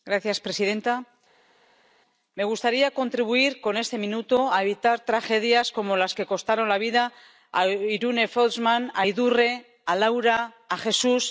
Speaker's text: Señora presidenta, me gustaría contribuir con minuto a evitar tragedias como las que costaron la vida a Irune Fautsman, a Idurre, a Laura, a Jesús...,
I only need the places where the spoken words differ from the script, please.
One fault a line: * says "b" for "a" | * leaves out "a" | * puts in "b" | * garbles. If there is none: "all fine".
* puts in "este"